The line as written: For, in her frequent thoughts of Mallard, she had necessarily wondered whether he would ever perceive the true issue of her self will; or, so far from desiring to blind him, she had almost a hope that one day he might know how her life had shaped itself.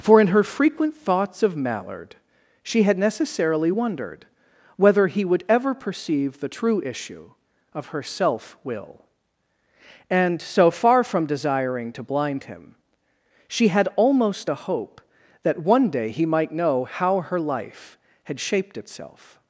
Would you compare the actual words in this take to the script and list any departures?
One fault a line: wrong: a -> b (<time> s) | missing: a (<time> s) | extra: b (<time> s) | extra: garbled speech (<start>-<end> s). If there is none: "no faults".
wrong: or -> and (10.1 s)